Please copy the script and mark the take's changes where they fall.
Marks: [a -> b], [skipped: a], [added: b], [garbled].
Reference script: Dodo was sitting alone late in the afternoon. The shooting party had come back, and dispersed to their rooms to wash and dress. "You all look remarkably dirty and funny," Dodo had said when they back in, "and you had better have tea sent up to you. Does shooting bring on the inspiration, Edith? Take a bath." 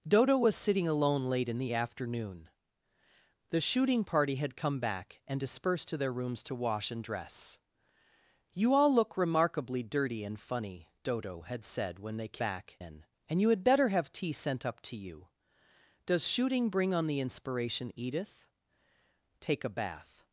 Dodo was sitting alone late in the afternoon. The shooting party had come back, and dispersed to their rooms to wash and dress. "You all look remarkably dirty and funny," Dodo had said when they back in, "and you had better have tea sent up to you. Does shooting bring on the inspiration, Edith? Take a bath."